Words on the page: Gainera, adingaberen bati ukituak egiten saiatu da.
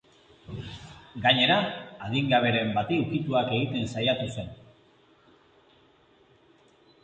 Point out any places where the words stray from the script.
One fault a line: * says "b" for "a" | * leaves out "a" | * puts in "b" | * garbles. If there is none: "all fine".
* says "zen" for "da"